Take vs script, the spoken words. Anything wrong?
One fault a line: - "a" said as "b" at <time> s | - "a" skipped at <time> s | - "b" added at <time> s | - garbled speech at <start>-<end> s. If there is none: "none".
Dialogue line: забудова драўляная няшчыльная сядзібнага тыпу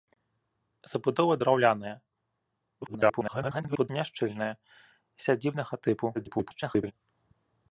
- garbled speech at 2.8-3.9 s
- garbled speech at 6.1-6.9 s